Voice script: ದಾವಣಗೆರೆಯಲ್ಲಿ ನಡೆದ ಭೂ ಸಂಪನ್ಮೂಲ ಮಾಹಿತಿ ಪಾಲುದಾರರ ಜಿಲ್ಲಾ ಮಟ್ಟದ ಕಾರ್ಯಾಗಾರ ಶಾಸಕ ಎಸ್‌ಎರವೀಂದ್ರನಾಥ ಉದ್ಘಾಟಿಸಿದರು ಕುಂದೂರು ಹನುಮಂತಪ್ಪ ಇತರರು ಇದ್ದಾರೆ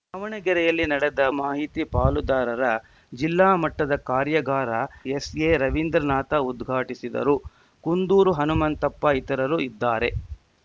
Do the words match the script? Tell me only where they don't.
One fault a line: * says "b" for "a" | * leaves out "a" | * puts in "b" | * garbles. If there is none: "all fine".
* leaves out "ಭೂ ಸಂಪನ್ಮೂಲ"
* leaves out "ಶಾಸಕ"